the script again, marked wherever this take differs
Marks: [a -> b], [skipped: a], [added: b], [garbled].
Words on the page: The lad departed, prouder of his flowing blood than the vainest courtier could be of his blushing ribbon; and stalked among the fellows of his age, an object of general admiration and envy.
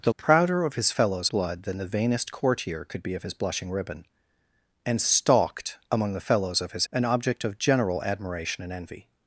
The [skipped: lad departed,] prouder of his [flowing -> fellows] blood than the vainest courtier could be of his blushing ribbon; and stalked among the fellows of his [skipped: age,] an object of general admiration and envy.